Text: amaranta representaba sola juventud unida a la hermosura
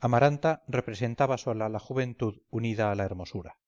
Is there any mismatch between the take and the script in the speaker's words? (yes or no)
yes